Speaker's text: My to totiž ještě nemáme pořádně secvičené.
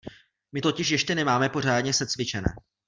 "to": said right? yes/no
no